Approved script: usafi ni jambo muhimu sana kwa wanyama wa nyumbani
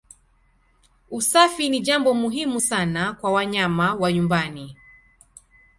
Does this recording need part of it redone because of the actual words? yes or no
no